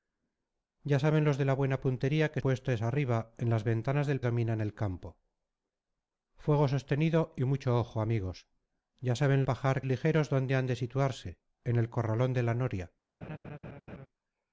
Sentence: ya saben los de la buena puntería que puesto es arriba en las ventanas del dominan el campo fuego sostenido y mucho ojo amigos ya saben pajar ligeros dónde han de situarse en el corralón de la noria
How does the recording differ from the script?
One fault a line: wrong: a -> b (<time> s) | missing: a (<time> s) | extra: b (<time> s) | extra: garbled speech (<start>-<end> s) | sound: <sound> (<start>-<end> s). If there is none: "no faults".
sound: laugh (13.2-14.1 s)